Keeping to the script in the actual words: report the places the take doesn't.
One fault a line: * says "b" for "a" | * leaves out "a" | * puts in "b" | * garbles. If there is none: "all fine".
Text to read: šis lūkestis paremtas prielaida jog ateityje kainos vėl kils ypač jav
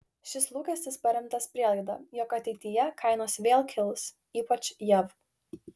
all fine